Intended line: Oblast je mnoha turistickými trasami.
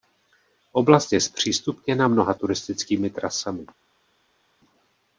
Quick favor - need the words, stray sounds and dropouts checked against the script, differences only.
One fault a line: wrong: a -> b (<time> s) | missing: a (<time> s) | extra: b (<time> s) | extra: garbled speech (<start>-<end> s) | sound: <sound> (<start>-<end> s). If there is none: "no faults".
extra: zpřístupněna (1.2 s)